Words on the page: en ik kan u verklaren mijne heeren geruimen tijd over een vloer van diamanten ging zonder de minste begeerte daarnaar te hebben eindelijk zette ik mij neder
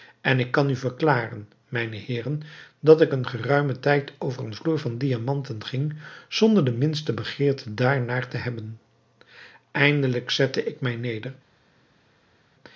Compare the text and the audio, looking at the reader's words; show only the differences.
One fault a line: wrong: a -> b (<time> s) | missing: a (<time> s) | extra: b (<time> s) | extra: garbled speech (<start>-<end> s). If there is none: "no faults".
extra: dat ik een (2.8 s)